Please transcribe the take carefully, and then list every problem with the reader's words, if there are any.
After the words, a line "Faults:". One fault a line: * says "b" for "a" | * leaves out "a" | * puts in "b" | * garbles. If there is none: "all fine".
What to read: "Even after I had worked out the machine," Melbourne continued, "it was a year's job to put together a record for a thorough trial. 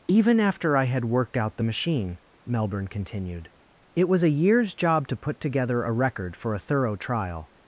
"Even after I had worked out the machine," Melbourne continued, "it was a year's job to put together a record for a thorough trial.
Faults:
all fine